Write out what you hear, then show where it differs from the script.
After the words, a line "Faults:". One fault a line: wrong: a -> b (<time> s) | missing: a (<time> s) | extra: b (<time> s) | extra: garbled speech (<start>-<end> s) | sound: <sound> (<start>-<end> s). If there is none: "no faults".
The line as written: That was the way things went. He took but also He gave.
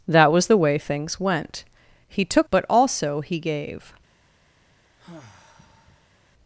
That was the way things went. He took but also He gave.
Faults:
sound: sigh (5.0-6.2 s)